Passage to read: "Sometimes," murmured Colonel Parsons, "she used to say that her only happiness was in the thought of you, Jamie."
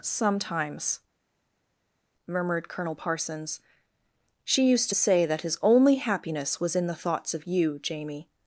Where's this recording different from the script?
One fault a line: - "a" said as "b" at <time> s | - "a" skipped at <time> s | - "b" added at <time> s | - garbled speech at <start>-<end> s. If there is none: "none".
- "her" said as "his" at 5.4 s
- "thought" said as "thoughts" at 6.9 s